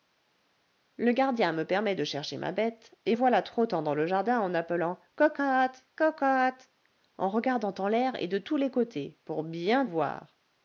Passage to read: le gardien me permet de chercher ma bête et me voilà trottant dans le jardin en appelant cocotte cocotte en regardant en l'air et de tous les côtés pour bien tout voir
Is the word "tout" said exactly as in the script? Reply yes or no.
no